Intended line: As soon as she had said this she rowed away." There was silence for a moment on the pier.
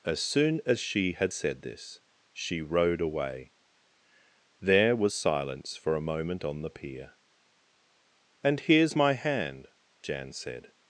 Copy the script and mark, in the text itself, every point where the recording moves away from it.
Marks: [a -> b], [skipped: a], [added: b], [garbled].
As soon as she had said this she rowed away." There was silence for a moment on the pier. [added: And here's my hand Jan said]